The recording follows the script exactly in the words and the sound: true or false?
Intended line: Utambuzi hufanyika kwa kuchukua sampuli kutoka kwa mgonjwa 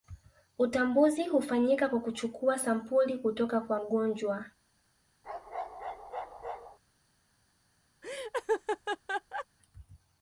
false